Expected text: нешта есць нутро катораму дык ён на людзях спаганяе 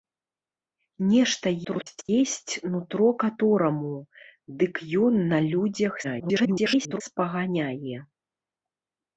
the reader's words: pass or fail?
fail